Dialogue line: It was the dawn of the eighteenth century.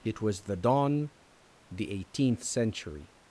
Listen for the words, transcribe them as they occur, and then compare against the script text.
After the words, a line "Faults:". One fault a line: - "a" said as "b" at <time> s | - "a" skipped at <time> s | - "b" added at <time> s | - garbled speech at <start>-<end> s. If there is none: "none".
It was the dawn the eighteenth century.
Faults:
- "of" skipped at 1.1 s